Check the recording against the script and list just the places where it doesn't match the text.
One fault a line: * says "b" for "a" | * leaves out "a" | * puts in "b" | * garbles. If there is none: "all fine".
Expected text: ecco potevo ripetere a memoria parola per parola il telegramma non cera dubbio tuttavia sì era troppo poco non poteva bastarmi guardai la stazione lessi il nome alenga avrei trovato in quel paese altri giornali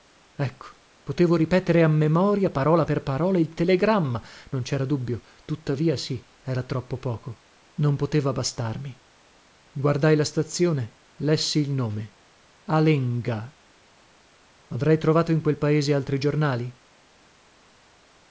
all fine